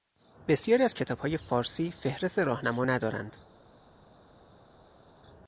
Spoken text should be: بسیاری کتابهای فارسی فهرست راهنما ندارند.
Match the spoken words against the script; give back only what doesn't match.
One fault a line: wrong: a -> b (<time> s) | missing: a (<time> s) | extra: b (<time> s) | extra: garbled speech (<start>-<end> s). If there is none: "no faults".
extra: از (0.8 s)